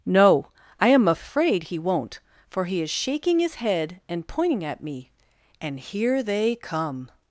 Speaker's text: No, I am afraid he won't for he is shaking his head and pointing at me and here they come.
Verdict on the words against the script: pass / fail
pass